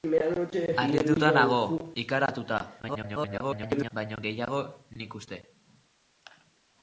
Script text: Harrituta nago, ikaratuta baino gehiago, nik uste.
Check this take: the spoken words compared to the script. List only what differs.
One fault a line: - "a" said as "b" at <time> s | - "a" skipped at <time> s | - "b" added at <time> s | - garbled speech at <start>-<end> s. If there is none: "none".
- garbled speech at 2.8-3.9 s